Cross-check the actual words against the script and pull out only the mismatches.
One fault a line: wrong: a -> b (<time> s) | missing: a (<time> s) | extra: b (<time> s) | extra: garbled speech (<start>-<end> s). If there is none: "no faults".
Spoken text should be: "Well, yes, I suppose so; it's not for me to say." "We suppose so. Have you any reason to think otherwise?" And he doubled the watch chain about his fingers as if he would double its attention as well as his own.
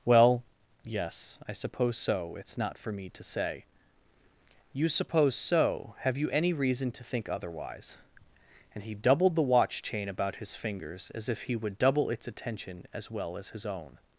wrong: We -> You (4.7 s)